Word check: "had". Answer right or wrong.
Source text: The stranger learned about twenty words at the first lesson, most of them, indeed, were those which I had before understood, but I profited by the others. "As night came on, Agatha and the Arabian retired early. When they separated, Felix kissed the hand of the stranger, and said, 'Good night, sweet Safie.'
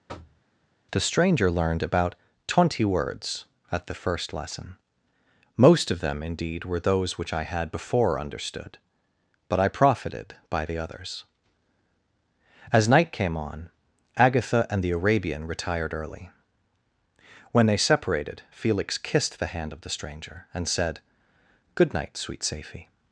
right